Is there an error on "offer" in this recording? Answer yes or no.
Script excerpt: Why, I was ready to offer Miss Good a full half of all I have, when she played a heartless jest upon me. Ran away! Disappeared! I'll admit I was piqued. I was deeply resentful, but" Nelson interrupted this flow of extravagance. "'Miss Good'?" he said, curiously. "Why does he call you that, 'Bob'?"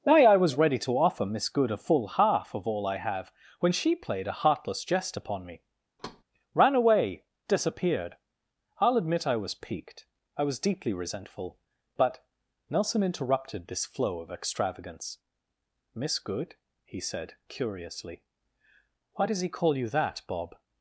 no